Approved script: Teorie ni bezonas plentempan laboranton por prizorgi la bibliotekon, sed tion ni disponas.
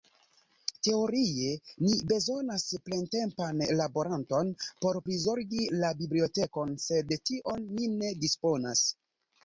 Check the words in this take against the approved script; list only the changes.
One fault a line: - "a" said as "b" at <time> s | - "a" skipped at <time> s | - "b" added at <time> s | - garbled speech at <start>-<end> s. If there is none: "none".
- "ne" added at 8.0 s